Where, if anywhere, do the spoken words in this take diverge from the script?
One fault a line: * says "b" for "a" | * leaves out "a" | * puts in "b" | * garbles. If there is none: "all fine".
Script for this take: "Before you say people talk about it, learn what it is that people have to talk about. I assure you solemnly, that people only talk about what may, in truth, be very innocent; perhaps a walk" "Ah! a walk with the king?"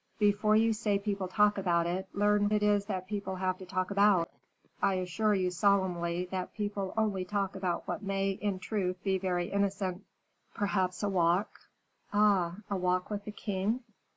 * leaves out "what"